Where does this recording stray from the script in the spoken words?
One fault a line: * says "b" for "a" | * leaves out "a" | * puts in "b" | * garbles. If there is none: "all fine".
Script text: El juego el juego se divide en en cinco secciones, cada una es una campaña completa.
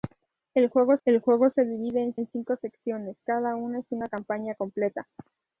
all fine